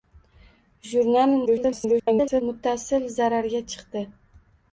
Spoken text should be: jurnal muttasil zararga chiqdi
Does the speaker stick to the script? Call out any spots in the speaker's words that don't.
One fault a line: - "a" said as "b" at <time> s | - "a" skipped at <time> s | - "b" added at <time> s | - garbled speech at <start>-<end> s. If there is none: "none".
- garbled speech at 1.5-2.4 s